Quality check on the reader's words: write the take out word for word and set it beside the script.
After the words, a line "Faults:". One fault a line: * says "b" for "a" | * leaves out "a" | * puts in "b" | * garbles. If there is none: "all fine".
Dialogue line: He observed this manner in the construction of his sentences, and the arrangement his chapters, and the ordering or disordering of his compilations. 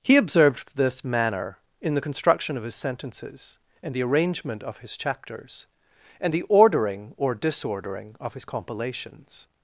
He observed this manner in the construction of his sentences, and the arrangement of his chapters, and the ordering or disordering of his compilations.
Faults:
* puts in "of"